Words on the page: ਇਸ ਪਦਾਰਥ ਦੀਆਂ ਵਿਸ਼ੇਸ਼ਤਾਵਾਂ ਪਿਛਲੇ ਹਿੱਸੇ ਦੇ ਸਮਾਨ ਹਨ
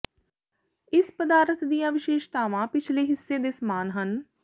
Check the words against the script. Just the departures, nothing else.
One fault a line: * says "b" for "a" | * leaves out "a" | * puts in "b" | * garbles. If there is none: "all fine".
all fine